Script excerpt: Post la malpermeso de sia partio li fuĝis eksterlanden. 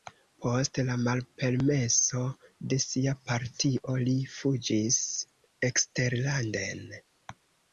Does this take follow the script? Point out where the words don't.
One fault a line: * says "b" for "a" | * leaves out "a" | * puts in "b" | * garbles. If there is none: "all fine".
all fine